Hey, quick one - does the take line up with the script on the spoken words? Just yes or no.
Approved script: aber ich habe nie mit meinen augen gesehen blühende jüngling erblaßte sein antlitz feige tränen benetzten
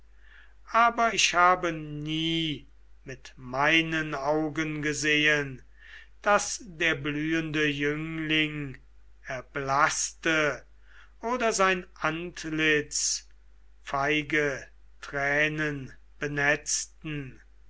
no